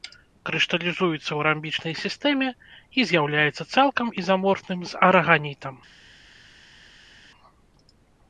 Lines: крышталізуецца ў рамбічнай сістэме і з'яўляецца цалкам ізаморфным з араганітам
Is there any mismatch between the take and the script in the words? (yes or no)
no